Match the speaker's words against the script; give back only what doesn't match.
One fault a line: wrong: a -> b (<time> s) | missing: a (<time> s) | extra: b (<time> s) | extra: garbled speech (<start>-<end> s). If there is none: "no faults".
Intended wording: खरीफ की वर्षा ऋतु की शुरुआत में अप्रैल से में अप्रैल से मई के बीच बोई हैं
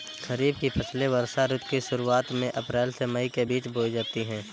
extra: फसलें (0.7 s)
missing: में अप्रैल से (3.0 s)
extra: जाती (3.9 s)